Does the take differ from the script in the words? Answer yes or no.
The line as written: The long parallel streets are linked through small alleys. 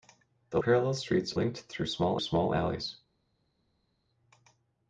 yes